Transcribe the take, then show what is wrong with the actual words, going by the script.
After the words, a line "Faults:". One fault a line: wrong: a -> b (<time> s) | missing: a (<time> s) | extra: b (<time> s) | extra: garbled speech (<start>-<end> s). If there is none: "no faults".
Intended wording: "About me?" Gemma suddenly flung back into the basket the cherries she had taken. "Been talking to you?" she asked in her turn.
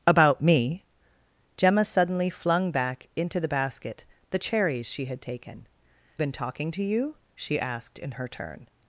"About me?" Gemma suddenly flung back into the basket the cherries she had taken. "Been talking to you?" she asked in her turn.
Faults:
no faults